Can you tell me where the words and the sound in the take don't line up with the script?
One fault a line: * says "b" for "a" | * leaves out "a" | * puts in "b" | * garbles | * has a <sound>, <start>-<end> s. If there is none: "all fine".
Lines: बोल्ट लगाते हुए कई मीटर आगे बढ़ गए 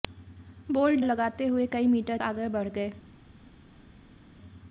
all fine